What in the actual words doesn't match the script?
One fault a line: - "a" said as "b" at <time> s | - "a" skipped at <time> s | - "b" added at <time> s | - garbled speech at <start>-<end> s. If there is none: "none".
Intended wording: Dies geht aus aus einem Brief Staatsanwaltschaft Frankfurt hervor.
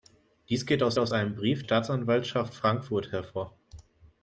none